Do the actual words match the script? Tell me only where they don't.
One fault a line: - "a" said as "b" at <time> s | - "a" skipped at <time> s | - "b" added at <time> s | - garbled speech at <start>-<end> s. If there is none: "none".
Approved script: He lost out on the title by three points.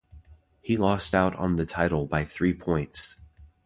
none